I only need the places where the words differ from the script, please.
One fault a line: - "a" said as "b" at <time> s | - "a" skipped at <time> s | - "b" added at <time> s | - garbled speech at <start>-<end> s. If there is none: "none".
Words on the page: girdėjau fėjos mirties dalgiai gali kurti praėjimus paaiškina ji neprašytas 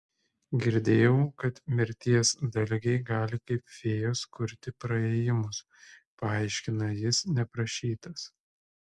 - "fėjos" said as "kad" at 1.4 s
- "kaip fėjos" added at 3.5 s
- "ji" said as "jis" at 7.0 s